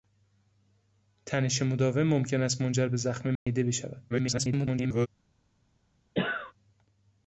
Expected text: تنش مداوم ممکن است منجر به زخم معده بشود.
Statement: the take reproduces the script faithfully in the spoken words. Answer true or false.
false